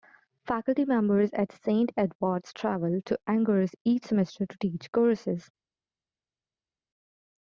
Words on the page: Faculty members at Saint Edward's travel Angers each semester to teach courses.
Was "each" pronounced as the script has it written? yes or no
yes